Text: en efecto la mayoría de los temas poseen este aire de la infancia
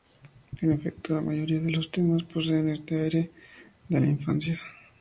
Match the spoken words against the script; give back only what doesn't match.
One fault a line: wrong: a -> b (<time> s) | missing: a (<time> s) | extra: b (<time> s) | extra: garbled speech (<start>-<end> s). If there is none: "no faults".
no faults